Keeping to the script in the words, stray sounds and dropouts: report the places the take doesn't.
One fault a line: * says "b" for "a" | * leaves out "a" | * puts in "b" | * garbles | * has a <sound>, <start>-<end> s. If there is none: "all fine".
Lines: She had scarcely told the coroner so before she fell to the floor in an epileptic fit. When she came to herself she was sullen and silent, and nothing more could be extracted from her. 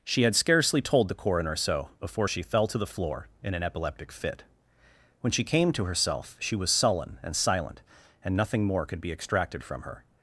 all fine